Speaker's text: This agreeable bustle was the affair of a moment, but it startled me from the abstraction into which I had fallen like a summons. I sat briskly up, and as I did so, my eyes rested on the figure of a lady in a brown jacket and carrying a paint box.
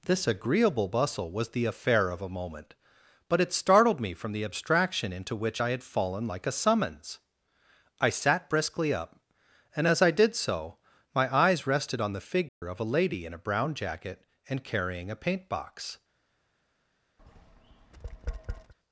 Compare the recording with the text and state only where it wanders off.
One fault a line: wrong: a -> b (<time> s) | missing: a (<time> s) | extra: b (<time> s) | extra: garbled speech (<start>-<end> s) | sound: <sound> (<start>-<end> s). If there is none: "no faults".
sound: dropout (12.5-12.6 s)
sound: tap (17.2-18.7 s)